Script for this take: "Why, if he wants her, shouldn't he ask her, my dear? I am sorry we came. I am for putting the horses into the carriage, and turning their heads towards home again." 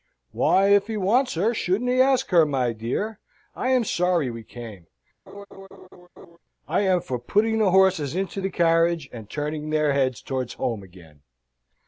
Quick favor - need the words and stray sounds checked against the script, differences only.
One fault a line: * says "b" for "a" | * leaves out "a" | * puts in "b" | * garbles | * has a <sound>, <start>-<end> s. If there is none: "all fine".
* has a laugh, 5.3-6.4 s